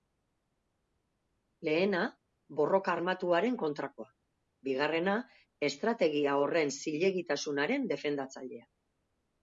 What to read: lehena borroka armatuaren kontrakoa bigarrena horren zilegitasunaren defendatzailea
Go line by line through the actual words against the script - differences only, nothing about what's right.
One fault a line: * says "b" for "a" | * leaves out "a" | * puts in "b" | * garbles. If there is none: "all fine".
* puts in "estrategia"